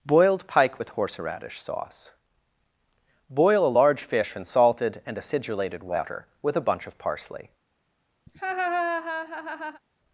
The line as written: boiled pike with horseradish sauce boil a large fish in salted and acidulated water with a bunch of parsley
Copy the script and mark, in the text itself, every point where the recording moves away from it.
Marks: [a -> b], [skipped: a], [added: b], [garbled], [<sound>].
boiled pike with horseradish sauce boil a large fish in salted and acidulated water with a bunch of parsley [laugh]